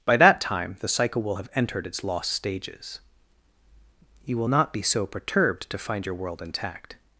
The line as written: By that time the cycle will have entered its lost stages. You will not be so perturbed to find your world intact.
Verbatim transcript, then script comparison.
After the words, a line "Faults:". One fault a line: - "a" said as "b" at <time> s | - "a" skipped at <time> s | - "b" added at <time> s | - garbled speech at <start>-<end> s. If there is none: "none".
By that time the cycle will have entered its lost stages. You will not be so perturbed to find your world intact.
Faults:
none